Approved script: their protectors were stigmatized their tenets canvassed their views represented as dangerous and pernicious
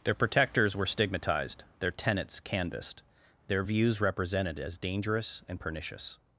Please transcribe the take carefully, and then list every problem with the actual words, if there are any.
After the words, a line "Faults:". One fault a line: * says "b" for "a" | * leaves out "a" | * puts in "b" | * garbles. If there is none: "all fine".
their protectors were stigmatized their tenets canvassed their views represented as dangerous and pernicious
Faults:
all fine